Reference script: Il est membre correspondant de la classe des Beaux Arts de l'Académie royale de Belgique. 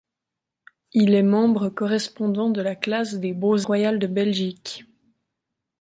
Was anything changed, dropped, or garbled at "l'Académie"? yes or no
yes